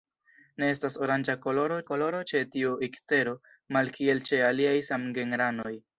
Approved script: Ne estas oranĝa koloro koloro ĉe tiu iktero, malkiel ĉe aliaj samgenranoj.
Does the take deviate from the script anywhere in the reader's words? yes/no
no